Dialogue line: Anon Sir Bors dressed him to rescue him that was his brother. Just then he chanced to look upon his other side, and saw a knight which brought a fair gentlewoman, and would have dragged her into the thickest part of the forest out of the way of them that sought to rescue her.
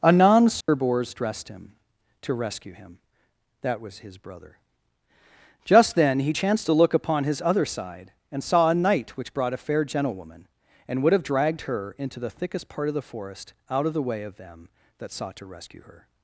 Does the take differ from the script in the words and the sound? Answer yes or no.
yes